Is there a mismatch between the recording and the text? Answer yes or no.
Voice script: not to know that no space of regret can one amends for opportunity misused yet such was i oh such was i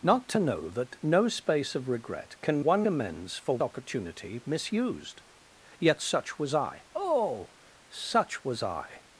no